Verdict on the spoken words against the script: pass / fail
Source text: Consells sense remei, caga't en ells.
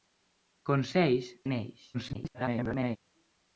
fail